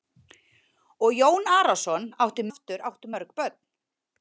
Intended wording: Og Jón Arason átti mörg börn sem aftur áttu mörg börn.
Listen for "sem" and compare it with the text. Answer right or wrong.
wrong